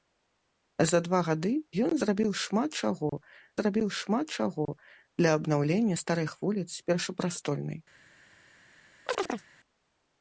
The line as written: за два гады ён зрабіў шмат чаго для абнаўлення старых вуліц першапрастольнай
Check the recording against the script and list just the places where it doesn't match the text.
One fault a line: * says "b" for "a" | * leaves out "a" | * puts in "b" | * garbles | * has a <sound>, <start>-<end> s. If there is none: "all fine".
* puts in "зрабіў шмат чаго"
* has a chirp, 9.1-9.4 s